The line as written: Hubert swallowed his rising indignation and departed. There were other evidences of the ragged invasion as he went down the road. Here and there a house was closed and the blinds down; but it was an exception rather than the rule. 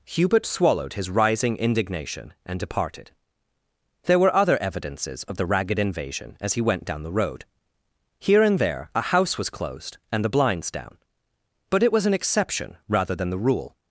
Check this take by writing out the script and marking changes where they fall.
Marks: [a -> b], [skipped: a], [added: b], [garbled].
Hubert swallowed his rising indignation and departed. There were other evidences of the ragged invasion as he went down the road. Here and there a house was closed and the blinds down; but it was an exception rather than the rule.